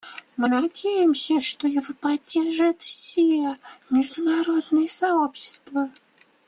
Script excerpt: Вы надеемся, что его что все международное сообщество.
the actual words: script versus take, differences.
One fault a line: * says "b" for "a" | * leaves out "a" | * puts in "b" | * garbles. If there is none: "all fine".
* says "Мы" for "Вы"
* says "поддержит" for "что"